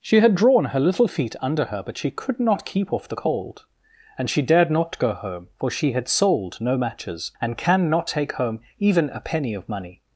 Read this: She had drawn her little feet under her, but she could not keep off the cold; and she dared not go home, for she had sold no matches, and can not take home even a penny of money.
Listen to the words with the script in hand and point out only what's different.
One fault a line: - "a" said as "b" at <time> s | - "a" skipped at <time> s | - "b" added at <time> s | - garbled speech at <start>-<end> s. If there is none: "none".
none